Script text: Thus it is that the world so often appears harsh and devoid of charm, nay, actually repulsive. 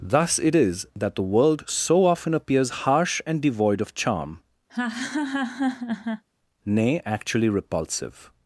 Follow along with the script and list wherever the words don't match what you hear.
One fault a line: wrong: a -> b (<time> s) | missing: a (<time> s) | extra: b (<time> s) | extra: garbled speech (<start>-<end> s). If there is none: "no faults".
no faults